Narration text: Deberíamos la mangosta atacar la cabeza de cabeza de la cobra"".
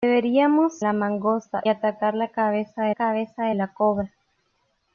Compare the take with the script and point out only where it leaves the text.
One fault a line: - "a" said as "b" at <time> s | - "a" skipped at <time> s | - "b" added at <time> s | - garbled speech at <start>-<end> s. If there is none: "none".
none